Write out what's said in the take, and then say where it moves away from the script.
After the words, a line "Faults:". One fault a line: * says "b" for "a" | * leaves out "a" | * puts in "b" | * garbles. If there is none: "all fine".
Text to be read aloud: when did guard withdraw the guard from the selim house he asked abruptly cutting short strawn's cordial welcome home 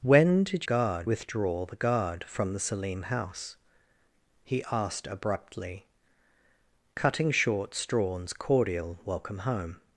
when did guard withdraw the guard from the selim house he asked abruptly cutting short strawn's cordial welcome home
Faults:
all fine